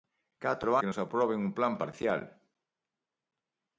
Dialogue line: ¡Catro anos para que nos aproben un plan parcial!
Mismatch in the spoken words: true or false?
true